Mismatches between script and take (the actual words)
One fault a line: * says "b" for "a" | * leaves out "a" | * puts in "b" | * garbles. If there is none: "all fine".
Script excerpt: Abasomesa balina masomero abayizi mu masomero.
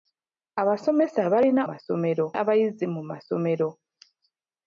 all fine